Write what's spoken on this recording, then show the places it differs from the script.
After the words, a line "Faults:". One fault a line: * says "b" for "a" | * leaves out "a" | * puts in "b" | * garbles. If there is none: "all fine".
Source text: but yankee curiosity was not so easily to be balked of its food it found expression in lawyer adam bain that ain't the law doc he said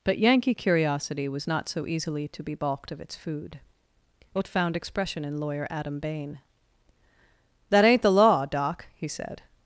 but yankee curiosity was not so easily to be balked of its food it found expression in lawyer adam bain that ain't the law doc he said
Faults:
all fine